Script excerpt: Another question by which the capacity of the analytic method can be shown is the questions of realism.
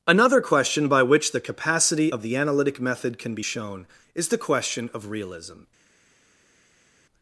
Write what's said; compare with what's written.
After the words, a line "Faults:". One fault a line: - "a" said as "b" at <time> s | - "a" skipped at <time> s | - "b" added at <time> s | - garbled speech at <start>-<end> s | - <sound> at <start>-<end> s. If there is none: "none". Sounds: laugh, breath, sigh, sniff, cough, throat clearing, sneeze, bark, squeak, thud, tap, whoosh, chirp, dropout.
Another question by which the capacity of the analytic method can be shown is the question of realism.
Faults:
- "questions" said as "question" at 4.4 s